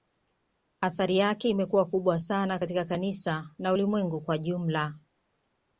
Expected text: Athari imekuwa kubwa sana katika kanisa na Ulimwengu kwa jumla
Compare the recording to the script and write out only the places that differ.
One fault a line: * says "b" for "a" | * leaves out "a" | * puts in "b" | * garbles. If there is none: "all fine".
* puts in "yake"